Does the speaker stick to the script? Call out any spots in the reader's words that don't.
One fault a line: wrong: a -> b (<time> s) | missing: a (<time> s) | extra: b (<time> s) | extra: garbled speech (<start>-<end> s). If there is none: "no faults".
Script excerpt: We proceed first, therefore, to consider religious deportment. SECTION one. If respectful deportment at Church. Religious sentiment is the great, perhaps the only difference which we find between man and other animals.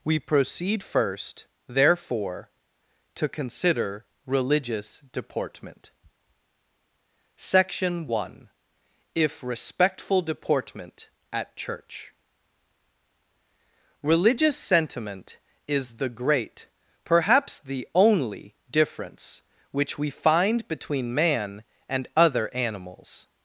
no faults